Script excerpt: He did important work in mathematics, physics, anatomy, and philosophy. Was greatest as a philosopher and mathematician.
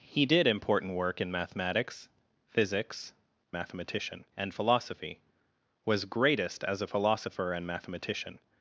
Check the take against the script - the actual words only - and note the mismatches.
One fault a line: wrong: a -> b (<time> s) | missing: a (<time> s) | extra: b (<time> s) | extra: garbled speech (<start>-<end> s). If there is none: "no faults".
wrong: anatomy -> mathematician (3.5 s)